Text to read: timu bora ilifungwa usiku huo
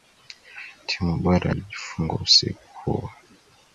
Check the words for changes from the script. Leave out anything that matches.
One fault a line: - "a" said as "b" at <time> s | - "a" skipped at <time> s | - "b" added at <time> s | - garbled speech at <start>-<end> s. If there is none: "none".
none